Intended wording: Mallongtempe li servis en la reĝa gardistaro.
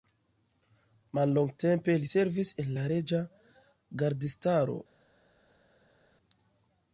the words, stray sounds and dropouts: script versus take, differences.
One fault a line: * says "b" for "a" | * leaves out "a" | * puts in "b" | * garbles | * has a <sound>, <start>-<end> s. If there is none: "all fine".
all fine